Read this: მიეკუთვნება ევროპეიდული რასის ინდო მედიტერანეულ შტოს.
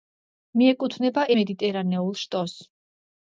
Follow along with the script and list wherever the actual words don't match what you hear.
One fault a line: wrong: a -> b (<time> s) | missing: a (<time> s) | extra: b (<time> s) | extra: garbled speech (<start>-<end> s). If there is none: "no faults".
missing: ევროპეიდული რასის ინდო (1.2 s)